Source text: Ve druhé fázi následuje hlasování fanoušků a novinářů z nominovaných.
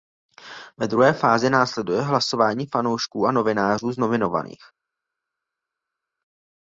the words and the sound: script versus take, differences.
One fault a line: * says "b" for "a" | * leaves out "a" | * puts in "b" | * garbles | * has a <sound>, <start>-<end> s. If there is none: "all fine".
all fine